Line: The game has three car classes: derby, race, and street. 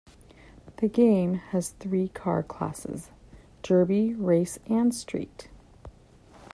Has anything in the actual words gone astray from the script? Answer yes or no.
no